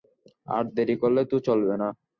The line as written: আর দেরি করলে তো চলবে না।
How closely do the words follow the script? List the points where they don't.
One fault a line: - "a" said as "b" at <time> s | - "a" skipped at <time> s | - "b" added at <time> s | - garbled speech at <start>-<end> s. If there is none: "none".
none